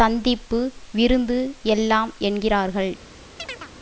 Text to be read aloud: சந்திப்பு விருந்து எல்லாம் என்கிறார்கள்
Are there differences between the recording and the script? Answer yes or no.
no